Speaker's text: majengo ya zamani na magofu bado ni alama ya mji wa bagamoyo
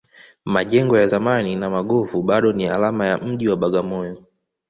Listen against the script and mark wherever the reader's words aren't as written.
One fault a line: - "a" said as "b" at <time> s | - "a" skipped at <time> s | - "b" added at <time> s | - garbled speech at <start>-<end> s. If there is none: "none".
none